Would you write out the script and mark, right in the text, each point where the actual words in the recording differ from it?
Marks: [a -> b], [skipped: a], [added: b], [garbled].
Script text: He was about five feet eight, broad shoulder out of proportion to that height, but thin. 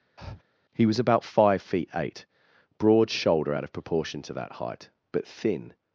He was about five feet eight, broad shoulder out of proportion to that height, but thin.